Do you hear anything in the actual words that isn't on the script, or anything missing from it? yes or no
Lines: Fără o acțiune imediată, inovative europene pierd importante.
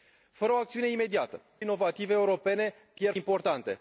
no